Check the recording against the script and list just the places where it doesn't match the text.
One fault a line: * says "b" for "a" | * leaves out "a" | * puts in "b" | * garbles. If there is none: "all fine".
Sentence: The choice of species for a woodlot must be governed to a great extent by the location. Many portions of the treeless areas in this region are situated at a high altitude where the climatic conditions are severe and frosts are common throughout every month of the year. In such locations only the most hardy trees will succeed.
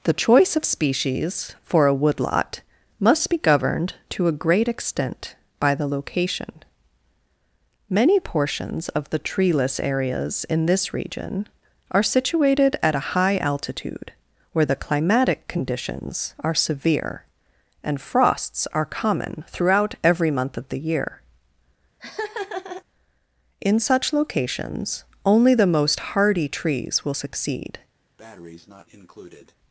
all fine